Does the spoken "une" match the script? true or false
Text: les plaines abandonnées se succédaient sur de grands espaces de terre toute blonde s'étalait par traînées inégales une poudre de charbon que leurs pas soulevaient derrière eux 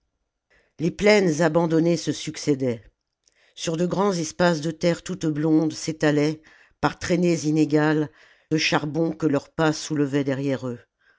false